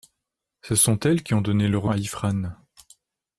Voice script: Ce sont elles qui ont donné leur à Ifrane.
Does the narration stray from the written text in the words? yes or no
no